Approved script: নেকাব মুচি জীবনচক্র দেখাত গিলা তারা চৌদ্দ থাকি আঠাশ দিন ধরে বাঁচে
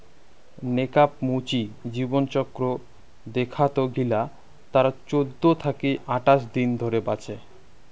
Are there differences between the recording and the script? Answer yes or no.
no